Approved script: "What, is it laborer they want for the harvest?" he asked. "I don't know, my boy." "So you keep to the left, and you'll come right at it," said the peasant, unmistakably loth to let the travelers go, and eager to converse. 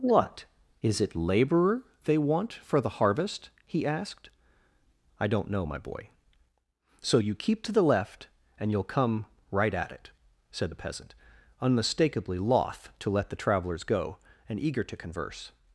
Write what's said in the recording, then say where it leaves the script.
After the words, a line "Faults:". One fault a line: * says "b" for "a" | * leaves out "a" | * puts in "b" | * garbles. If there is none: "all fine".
"What, is it laborer they want for the harvest?" he asked. "I don't know, my boy." "So you keep to the left, and you'll come right at it," said the peasant, unmistakably loth to let the travelers go, and eager to converse.
Faults:
all fine